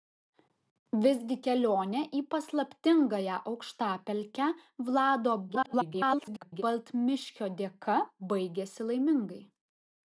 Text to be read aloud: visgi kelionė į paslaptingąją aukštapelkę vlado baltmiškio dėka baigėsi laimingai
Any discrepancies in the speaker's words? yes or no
yes